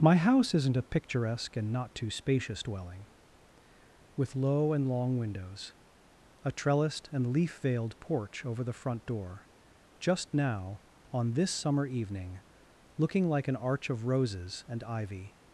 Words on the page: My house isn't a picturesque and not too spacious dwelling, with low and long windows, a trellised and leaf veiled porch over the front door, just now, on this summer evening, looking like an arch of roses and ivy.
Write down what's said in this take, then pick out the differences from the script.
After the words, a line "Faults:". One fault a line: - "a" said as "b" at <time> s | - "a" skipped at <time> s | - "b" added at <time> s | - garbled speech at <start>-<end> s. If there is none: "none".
My house isn't a picturesque and not too spacious dwelling, with low and long windows, a trellised and leaf veiled porch over the front door, just now, on this summer evening, looking like an arch of roses and ivy.
Faults:
none